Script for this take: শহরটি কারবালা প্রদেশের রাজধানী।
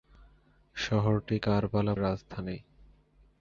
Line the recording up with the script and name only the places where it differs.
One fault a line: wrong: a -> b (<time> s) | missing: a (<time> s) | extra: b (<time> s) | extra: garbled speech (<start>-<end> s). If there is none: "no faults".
missing: প্রদেশের (1.9 s)